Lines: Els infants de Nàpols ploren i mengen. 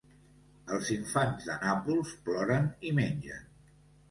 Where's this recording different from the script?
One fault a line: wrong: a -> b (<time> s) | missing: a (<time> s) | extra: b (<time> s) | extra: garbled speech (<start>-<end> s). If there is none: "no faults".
no faults